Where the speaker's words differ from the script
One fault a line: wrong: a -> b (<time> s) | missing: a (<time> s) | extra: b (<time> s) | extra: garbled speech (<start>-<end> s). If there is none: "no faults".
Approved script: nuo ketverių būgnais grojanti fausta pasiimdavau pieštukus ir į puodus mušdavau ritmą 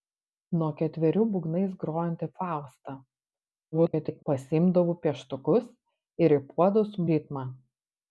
extra: garbled speech (3.7-4.2 s)
missing: mušdavau (7.0 s)